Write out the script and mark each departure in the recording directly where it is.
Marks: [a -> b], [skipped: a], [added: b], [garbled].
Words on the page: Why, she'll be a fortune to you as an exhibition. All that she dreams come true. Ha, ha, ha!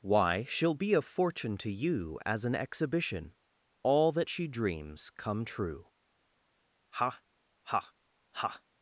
Why, she'll be a fortune to you as an exhibition. All that she dreams come true. Ha, ha, ha!